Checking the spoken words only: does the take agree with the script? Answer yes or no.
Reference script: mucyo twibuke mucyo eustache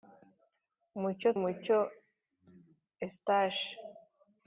no